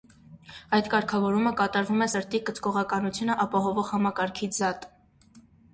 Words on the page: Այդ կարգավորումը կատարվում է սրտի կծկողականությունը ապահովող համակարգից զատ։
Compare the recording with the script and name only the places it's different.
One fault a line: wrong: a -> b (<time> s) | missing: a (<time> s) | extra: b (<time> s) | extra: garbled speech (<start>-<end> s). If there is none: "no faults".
no faults